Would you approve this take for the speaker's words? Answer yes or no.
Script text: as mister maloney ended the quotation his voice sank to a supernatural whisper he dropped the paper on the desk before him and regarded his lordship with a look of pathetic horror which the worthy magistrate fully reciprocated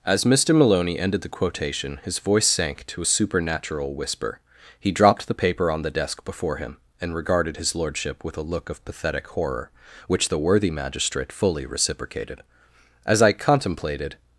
no